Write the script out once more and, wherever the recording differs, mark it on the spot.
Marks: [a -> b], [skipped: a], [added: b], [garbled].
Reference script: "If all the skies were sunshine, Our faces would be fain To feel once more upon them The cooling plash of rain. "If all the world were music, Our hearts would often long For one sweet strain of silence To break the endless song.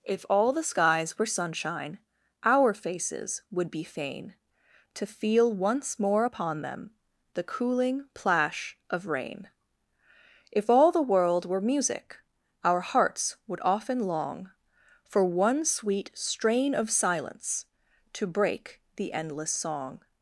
"If all the skies were sunshine, Our faces would be fain To feel once more upon them The cooling plash of rain. "If all the world were music, Our hearts would often long For one sweet strain of silence To break the endless song.